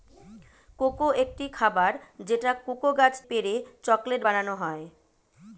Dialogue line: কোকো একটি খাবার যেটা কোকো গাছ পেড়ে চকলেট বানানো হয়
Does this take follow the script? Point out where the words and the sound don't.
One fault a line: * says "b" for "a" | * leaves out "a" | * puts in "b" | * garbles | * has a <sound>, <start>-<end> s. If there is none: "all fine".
all fine